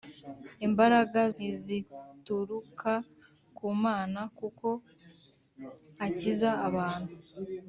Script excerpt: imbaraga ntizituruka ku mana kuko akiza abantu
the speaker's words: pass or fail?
pass